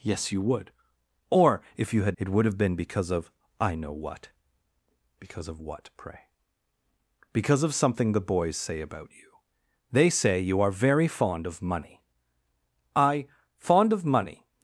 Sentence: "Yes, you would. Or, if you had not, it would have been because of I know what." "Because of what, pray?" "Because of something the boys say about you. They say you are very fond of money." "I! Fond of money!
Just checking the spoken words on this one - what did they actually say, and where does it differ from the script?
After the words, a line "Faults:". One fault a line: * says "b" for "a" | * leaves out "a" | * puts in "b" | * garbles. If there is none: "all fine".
"Yes, you would. Or, if you had it would have been because of I know what." "Because of what, pray?" "Because of something the boys say about you. They say you are very fond of money." "I! Fond of money!
Faults:
* leaves out "not"